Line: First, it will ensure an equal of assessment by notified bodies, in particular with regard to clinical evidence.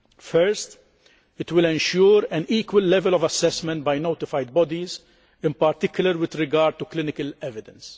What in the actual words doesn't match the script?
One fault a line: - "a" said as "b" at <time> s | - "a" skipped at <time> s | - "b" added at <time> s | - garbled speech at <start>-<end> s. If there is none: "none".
- "level" added at 2.8 s